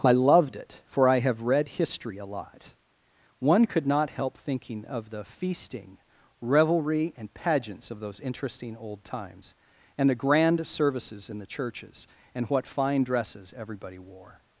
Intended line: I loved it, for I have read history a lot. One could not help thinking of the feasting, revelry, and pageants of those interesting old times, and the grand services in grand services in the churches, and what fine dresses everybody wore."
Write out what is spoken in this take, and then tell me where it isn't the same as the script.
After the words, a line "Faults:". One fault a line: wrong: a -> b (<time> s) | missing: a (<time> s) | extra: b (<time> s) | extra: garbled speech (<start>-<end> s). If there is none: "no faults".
I loved it, for I have read history a lot. One could not help thinking of the feasting, revelry, and pageants of those interesting old times, and the grand services in the churches, and what fine dresses everybody wore."
Faults:
missing: grand services in (11.4 s)